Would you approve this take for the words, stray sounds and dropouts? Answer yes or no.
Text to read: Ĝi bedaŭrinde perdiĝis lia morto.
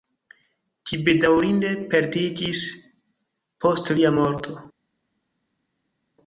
no